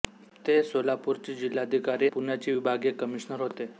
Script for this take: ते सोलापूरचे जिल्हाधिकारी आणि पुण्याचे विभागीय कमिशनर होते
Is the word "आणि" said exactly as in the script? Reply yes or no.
no